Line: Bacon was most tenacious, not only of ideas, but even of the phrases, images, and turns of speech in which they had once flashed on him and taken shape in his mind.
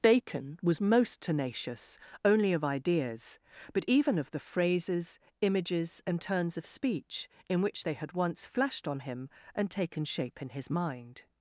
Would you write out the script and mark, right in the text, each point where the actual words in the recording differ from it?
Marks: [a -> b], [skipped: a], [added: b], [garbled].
Bacon was most tenacious, [skipped: not] only of ideas, but even of the phrases, images, and turns of speech in which they had once flashed on him and taken shape in his mind.